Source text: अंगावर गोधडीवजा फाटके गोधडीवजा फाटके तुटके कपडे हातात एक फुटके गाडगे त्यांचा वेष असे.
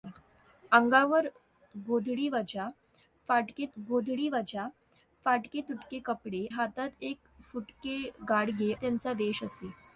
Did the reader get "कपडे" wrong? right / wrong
right